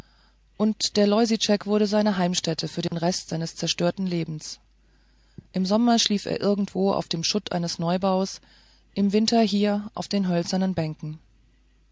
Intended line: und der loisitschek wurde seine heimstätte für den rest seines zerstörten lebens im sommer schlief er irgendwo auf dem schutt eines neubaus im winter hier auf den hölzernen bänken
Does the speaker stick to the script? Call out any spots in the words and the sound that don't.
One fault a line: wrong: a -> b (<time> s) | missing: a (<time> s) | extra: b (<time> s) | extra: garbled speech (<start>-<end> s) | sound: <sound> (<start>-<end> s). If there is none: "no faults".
sound: dropout (2.9-2.9 s)